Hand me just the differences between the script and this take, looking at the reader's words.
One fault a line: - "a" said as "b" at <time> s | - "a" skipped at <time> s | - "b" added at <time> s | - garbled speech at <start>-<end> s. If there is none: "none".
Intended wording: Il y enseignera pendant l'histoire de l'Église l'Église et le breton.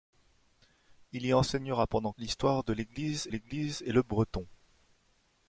none